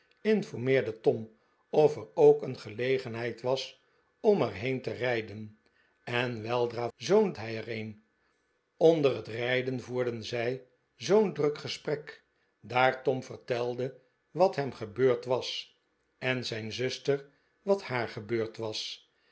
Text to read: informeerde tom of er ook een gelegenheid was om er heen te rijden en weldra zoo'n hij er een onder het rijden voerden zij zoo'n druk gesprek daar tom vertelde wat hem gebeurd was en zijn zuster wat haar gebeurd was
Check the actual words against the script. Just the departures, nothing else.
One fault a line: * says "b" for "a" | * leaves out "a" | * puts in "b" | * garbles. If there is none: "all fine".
all fine